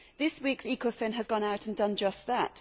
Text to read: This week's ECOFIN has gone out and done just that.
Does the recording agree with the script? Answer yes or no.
yes